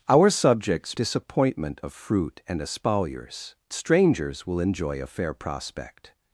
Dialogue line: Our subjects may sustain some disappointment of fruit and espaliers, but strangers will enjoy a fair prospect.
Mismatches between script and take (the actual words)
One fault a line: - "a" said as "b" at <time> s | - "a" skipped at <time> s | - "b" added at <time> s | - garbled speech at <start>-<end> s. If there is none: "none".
- "may sustain some" skipped at 1.0 s
- "but" skipped at 3.5 s